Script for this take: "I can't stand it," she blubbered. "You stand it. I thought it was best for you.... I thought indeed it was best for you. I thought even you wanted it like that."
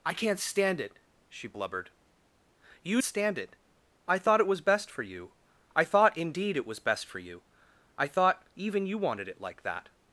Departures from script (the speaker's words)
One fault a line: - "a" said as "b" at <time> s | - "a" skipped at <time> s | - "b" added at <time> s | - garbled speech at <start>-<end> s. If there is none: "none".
none